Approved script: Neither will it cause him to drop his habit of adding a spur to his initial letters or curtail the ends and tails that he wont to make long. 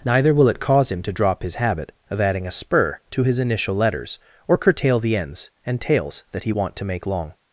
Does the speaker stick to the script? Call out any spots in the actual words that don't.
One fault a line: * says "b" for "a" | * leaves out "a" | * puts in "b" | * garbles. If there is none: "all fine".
all fine